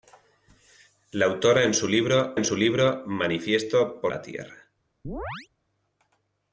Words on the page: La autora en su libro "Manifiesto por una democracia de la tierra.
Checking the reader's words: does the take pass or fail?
fail